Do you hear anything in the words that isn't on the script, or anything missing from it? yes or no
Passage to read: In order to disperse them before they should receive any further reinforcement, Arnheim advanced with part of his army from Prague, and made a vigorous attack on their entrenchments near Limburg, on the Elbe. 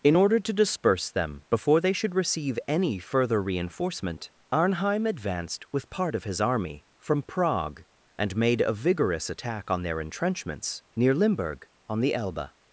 no